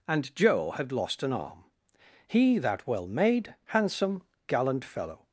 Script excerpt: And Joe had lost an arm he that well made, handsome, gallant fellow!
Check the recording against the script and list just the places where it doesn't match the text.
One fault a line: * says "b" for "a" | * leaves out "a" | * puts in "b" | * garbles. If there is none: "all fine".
all fine